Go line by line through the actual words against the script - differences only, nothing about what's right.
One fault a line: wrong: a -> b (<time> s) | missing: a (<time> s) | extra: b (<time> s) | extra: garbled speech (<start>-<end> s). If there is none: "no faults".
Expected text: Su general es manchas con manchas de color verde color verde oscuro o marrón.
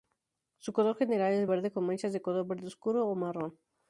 extra: color (0.7 s)
wrong: manchas -> verde (1.4 s)
missing: color verde (2.7 s)